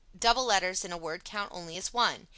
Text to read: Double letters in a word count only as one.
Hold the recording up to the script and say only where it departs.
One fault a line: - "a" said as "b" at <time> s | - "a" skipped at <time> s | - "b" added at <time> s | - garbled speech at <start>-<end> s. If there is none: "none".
none